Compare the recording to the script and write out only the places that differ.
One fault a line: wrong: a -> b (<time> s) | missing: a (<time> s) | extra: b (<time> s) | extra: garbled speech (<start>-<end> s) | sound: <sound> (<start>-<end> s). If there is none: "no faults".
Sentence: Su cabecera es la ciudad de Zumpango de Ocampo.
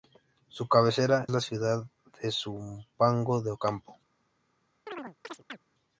missing: es (1.3 s)
sound: chirp (4.9-5.6 s)